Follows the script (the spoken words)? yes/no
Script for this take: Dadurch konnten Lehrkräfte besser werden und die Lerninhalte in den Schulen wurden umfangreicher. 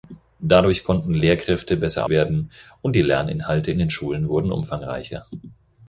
yes